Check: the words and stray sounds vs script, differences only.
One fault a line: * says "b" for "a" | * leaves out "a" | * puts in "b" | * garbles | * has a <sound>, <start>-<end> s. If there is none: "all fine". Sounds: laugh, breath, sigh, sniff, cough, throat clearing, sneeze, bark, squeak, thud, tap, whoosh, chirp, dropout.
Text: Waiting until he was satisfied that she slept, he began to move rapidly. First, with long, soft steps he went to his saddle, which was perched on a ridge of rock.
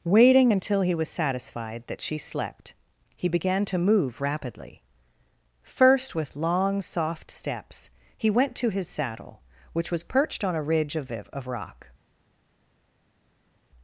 * puts in "of"